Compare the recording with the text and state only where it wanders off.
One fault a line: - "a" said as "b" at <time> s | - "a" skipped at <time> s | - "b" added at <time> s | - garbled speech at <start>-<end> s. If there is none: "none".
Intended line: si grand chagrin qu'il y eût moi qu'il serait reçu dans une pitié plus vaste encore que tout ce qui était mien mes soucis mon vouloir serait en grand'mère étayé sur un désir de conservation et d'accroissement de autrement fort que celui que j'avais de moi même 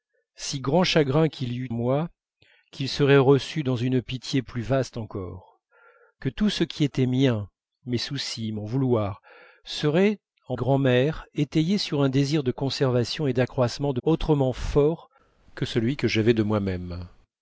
none